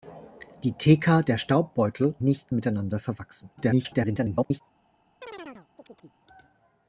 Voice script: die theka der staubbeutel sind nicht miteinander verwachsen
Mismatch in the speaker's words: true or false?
true